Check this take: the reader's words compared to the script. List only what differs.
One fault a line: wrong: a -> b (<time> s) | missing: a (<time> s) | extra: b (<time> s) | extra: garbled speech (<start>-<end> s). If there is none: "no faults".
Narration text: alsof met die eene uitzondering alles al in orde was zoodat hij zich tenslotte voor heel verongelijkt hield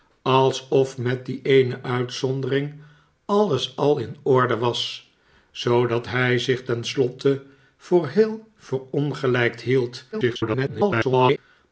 extra: garbled speech (10.1-11.4 s)